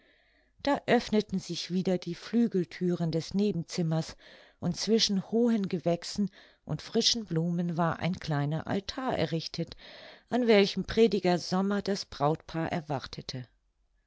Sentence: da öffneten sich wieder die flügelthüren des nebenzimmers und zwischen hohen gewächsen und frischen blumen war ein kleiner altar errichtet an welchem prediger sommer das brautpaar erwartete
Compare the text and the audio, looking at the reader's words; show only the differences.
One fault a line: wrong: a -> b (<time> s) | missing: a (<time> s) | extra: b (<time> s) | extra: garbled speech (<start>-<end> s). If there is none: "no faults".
no faults